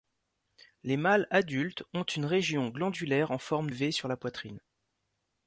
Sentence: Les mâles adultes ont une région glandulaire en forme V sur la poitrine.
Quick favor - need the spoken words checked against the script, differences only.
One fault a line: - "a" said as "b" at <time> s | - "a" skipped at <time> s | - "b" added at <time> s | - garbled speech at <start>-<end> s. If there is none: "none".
none